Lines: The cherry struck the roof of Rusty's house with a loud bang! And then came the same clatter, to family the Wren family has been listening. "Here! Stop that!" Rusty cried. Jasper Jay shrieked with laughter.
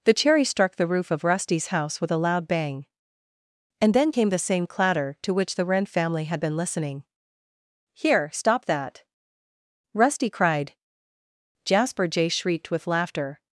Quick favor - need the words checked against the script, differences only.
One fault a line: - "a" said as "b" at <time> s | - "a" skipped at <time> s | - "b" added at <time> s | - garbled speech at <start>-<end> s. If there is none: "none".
- "family" said as "which" at 5.3 s
- "has" said as "had" at 6.2 s